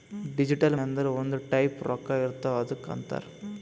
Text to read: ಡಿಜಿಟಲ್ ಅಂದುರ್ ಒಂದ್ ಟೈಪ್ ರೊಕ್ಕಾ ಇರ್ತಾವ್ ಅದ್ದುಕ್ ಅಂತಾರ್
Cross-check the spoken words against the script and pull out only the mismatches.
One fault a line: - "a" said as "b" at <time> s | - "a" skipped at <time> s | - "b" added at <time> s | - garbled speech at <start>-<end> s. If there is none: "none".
none